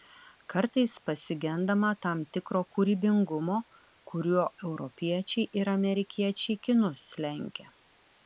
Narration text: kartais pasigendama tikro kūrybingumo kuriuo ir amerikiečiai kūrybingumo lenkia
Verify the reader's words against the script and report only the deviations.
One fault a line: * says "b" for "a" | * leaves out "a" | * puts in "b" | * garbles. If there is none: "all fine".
* puts in "tam"
* puts in "europiečiai"
* says "kinus" for "kūrybingumo"